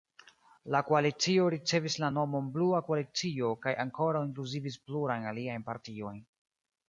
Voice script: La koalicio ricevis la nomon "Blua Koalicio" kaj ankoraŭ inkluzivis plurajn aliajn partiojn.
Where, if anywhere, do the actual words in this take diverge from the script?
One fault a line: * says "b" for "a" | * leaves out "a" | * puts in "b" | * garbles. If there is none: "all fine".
all fine